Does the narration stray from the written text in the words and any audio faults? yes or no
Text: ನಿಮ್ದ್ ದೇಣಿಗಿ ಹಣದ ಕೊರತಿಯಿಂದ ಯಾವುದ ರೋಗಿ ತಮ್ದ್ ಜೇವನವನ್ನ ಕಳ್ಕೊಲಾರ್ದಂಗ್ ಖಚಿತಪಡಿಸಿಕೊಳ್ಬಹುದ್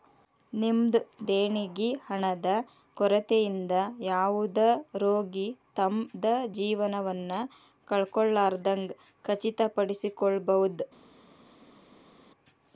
no